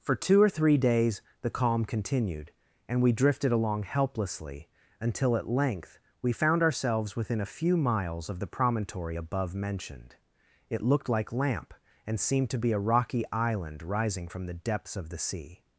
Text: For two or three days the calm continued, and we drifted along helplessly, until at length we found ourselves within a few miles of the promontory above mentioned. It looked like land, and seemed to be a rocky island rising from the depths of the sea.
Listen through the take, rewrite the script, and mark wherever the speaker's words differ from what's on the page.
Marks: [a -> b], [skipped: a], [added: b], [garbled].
For two or three days the calm continued, and we drifted along helplessly, until at length we found ourselves within a few miles of the promontory above mentioned. It looked like [land, -> lamp] and seemed to be a rocky island rising from the depths of the sea.